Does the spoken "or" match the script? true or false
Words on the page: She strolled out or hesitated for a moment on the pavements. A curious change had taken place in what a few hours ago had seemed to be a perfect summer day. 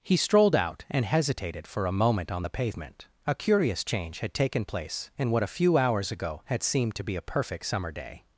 false